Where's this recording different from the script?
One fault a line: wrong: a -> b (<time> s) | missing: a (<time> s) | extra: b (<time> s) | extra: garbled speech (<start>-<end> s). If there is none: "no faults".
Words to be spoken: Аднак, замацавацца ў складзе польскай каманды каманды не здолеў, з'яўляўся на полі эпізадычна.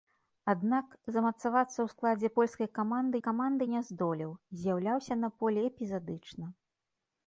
no faults